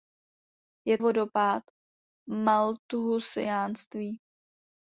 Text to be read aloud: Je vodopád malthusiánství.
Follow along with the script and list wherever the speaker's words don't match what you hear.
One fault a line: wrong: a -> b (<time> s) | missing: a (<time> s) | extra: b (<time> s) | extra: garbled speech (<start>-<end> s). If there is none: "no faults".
no faults